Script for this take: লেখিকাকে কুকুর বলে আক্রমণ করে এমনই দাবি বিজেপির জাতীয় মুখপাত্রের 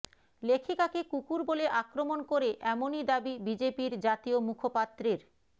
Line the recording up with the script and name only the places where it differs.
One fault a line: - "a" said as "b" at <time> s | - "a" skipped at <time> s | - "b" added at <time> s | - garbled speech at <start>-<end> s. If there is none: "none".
none